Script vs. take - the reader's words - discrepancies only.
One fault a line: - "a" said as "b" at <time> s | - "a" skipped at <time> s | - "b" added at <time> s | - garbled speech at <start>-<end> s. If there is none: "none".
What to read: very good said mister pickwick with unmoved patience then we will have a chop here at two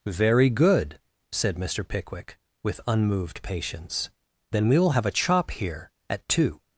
none